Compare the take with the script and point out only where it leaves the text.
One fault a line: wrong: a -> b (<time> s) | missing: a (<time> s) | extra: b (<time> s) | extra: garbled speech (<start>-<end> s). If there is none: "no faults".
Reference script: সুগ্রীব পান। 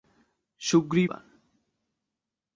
no faults